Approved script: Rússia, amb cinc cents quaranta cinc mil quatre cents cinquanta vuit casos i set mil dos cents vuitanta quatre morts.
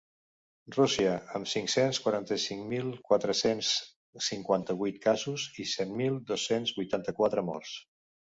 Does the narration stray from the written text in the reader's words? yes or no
no